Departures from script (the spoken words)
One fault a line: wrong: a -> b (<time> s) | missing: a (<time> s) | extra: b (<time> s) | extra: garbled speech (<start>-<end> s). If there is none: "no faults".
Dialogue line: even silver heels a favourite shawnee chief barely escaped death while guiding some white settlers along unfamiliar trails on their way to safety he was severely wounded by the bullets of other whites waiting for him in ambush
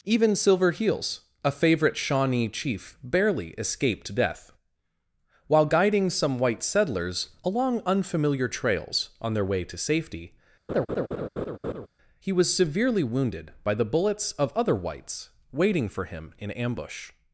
no faults